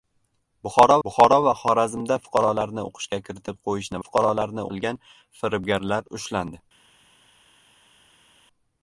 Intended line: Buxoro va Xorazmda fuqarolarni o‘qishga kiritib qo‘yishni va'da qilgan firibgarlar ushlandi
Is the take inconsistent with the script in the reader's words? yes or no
yes